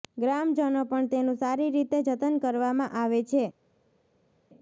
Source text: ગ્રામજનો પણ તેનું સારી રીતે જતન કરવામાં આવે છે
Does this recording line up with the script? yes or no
yes